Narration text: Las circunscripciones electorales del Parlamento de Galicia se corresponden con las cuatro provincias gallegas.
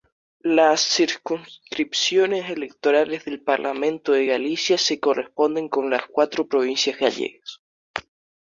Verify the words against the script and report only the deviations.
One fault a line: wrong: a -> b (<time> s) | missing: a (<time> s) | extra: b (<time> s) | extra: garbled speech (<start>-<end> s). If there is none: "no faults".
no faults